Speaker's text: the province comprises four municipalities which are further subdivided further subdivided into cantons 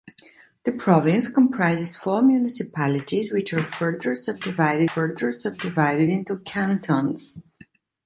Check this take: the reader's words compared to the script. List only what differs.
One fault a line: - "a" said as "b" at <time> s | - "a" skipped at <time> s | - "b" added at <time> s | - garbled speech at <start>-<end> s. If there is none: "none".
none